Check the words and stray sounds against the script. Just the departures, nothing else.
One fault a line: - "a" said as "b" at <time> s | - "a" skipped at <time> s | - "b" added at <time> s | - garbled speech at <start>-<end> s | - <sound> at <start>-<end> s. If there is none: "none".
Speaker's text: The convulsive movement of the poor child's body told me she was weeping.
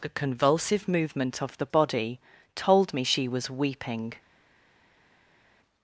- "poor child's" skipped at 1.7 s